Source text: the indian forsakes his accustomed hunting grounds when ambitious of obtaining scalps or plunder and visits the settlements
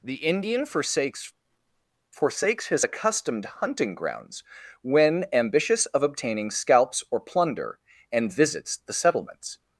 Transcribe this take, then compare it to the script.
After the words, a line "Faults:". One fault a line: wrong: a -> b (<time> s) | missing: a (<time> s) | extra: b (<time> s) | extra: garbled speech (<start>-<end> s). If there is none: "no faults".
the indian forsakes forsakes his accustomed hunting grounds when ambitious of obtaining scalps or plunder and visits the settlements
Faults:
extra: forsakes (2.1 s)